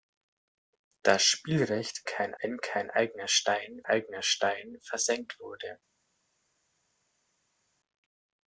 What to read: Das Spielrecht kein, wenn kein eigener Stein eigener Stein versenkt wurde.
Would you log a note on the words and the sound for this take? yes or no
no